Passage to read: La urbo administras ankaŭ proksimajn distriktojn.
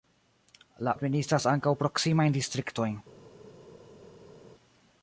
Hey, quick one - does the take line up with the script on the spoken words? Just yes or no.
no